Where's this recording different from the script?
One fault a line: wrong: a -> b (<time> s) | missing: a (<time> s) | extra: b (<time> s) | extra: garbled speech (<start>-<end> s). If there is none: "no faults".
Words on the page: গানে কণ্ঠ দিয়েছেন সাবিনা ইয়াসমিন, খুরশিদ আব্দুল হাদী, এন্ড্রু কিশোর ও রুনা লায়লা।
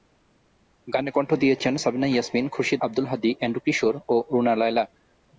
no faults